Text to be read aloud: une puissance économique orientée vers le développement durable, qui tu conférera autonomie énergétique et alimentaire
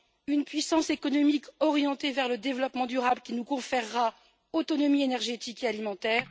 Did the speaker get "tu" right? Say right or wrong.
wrong